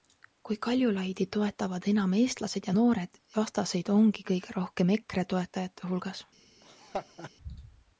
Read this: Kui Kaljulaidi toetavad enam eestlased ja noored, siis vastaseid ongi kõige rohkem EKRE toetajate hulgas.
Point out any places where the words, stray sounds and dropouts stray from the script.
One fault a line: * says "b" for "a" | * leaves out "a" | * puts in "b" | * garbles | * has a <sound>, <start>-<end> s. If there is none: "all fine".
* leaves out "siis"
* has a laugh, 6.6-7.3 s